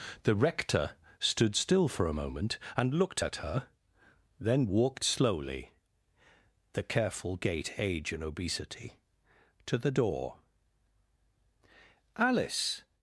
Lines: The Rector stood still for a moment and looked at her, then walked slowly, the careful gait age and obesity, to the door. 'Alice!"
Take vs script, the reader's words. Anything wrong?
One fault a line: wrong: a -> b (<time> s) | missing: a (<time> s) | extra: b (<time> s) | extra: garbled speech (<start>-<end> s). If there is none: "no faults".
no faults